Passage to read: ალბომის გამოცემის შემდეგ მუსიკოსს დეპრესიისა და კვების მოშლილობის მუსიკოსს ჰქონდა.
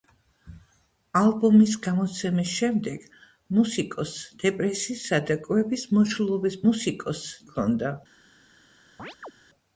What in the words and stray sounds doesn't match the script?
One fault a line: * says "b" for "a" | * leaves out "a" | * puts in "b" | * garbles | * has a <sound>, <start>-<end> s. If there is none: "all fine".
* has a chirp, 9.0-9.3 s